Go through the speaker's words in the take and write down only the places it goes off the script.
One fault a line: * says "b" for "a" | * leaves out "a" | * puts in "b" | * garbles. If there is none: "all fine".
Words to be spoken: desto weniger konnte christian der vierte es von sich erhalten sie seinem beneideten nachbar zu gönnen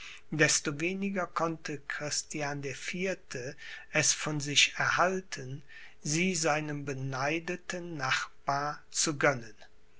all fine